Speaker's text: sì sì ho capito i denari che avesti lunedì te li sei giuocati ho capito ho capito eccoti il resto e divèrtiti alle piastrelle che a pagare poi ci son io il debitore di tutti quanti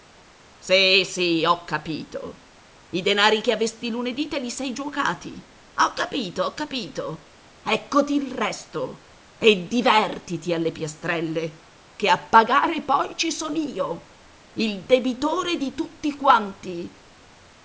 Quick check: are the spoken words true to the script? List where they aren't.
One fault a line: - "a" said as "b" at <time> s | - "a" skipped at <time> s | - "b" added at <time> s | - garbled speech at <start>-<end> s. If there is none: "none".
none